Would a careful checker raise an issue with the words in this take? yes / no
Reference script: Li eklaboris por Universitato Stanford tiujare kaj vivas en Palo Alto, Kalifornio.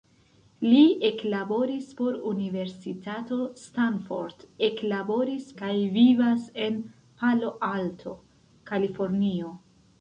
yes